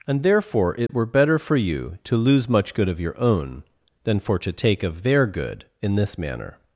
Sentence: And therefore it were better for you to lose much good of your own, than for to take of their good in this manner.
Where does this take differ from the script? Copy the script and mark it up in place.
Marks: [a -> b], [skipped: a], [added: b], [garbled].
And therefore it were better for you to lose much good of your own, than for to take of their good in this manner.